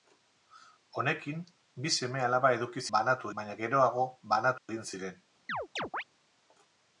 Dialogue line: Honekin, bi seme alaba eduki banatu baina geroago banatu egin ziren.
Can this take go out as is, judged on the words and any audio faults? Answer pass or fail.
fail